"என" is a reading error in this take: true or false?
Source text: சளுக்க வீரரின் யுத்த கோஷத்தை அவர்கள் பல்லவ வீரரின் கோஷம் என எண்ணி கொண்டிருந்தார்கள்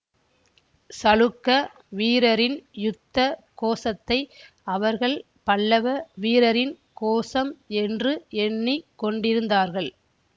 true